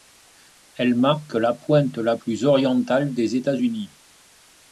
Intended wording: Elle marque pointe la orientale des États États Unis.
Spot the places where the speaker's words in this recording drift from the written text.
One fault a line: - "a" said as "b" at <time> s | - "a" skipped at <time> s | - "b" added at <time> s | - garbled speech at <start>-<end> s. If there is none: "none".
- "la" added at 1.4 s
- "plus" added at 2.1 s
- "États" skipped at 3.6 s